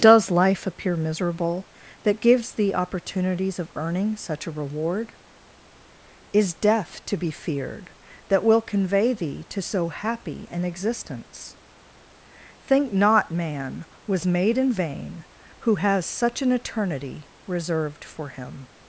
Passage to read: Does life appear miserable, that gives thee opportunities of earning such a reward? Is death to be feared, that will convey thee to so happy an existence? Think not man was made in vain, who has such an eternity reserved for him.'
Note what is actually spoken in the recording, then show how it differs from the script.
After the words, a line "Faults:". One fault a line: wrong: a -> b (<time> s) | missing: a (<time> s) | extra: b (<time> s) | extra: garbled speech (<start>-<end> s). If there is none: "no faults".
Does life appear miserable, that gives thee opportunities of earning such a reward? Is death to be feared, that will convey thee to so happy an existence? Think not man was made in vain, who has such an eternity reserved for him.'
Faults:
no faults